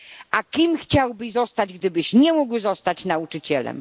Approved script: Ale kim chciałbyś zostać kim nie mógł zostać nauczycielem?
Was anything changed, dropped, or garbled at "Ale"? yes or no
yes